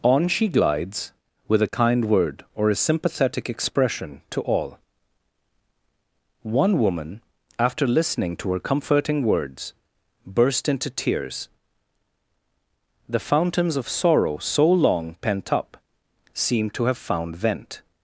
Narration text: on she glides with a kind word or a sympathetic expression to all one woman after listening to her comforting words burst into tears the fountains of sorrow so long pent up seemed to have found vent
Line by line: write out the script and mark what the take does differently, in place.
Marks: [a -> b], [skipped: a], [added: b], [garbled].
on she glides with a kind word or a sympathetic expression to all one woman after listening to her comforting words burst into tears the fountains of sorrow so long pent up seemed to have found vent